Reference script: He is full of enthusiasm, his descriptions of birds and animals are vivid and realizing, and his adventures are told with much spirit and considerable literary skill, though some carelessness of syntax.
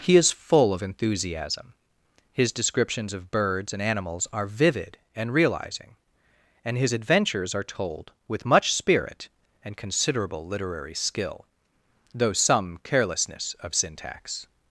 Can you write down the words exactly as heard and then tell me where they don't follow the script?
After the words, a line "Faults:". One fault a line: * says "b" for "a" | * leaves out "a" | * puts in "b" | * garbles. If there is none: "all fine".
He is full of enthusiasm, his descriptions of birds and animals are vivid and realizing, and his adventures are told with much spirit and considerable literary skill, though some carelessness of syntax.
Faults:
all fine